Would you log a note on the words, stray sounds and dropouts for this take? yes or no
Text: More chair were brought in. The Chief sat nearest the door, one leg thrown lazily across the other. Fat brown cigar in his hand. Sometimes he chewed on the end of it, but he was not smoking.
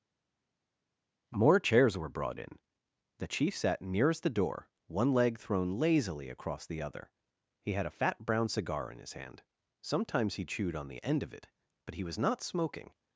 yes